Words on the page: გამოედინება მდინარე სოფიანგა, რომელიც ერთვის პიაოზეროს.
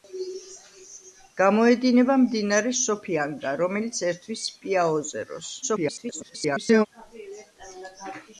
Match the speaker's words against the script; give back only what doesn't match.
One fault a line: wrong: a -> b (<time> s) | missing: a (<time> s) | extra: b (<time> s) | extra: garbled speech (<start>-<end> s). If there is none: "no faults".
extra: garbled speech (5.6-6.9 s)